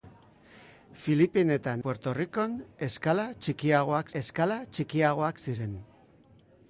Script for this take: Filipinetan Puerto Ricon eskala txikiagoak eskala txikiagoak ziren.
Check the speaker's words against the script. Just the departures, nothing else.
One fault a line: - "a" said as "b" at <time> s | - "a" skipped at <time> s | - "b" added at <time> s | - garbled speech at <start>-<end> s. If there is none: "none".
none